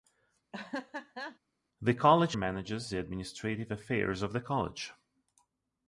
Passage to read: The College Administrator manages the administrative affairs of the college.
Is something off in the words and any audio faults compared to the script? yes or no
yes